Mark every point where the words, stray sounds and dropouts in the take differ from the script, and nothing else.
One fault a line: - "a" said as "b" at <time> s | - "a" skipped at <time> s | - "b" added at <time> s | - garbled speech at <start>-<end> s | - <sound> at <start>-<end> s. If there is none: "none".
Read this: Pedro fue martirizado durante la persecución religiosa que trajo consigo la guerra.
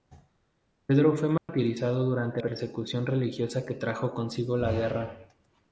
- dropout at 1.4-1.5 s
- "la" skipped at 2.4 s